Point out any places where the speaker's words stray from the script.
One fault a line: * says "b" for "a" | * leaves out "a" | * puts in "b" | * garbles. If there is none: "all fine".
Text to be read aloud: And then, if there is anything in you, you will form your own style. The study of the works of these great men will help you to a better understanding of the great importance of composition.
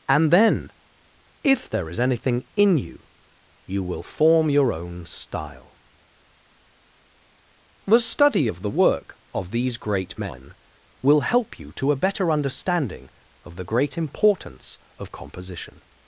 * says "work" for "works"